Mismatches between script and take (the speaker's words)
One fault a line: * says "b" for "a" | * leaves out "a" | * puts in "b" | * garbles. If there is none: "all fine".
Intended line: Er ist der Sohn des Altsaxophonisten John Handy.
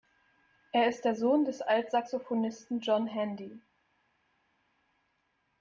all fine